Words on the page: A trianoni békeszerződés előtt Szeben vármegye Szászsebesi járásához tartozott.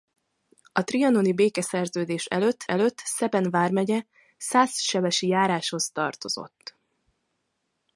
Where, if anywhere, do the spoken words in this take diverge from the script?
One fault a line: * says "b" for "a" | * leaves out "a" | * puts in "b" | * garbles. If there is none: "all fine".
* puts in "előtt"